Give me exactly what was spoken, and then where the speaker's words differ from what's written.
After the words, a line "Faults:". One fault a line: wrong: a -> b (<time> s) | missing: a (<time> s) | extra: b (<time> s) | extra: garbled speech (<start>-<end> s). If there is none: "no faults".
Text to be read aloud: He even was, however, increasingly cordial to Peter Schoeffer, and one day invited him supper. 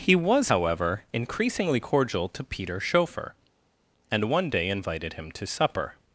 He was, however, increasingly cordial to Peter Schoeffer, and one day invited him to supper.
Faults:
missing: even (0.1 s)
extra: to (5.3 s)